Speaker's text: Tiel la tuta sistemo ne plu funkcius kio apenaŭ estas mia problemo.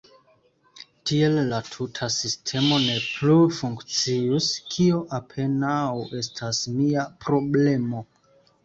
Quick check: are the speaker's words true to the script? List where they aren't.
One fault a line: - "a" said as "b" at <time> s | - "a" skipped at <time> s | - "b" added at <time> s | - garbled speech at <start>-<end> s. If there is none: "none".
none